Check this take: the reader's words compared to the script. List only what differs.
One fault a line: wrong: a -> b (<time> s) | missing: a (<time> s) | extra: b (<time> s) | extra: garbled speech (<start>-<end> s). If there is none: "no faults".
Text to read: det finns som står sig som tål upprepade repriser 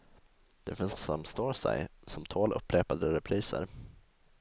no faults